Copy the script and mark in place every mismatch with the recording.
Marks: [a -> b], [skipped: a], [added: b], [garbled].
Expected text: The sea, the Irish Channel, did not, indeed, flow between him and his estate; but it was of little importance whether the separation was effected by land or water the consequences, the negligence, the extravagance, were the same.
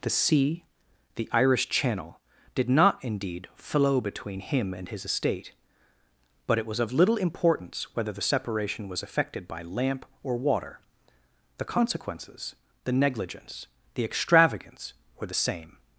The sea, the Irish Channel, did not, indeed, flow between him and his estate; but it was of little importance whether the separation was effected by [land -> lamp] or water the consequences, the negligence, the extravagance, were the same.